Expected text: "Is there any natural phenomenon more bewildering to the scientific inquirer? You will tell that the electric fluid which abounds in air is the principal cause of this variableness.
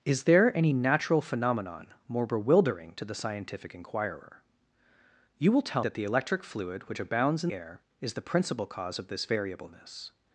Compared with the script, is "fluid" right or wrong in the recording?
right